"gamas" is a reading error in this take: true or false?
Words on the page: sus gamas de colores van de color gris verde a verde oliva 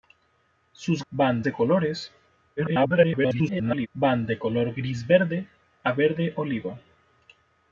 true